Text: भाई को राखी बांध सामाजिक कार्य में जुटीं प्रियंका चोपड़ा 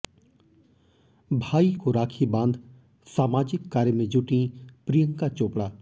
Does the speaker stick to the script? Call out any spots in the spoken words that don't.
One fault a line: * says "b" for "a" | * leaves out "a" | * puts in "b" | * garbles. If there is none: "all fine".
all fine